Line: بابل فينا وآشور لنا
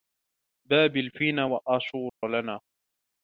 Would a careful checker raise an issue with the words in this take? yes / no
no